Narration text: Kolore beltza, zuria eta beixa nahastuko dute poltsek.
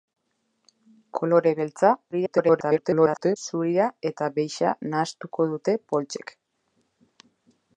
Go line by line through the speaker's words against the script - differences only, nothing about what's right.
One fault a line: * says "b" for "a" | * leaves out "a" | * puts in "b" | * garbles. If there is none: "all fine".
* garbles